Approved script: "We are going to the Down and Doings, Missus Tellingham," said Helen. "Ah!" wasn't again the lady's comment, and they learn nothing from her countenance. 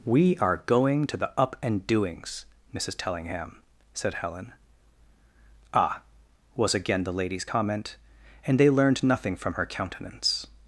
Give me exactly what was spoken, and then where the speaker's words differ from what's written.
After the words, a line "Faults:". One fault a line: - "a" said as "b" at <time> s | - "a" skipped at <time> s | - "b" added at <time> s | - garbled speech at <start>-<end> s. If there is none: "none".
"We are going to the Up and Doings, Missus Tellingham," said Helen. "Ah!" was again the lady's comment, and they learned nothing from her countenance.
Faults:
- "Down" said as "Up" at 1.4 s
- "wasn't" said as "was" at 6.5 s
- "learn" said as "learned" at 8.7 s